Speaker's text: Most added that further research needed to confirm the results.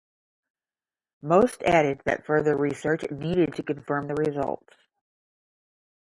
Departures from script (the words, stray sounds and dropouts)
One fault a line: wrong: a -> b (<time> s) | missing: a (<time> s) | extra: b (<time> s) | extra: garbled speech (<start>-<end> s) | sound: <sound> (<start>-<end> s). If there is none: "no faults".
no faults